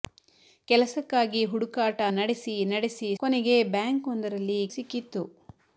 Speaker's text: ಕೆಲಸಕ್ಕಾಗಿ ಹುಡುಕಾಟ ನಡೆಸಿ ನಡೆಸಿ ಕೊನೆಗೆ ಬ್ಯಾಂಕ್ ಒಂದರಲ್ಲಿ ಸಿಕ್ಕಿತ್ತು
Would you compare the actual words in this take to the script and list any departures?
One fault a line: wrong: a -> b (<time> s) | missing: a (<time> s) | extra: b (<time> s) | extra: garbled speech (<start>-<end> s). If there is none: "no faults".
no faults